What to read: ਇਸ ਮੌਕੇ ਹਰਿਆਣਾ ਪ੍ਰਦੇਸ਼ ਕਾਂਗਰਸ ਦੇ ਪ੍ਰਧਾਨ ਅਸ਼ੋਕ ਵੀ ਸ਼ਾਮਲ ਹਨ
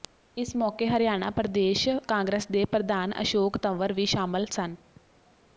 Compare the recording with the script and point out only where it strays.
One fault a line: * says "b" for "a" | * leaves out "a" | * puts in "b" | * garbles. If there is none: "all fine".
* puts in "ਤੰਵਰ"
* says "ਸਨ" for "ਹਨ"